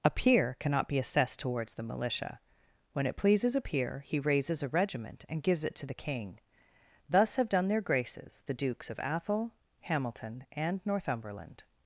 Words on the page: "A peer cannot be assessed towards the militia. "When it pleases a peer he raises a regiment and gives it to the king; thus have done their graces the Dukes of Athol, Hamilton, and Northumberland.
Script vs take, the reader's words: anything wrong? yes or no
no